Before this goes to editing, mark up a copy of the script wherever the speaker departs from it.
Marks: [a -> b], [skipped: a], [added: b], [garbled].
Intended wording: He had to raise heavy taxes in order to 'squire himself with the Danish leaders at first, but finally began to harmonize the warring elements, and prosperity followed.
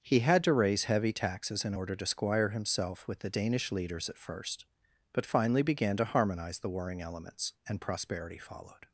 He had to raise heavy taxes in order to 'squire himself with the Danish leaders at first, but finally began to harmonize the warring elements, and prosperity followed.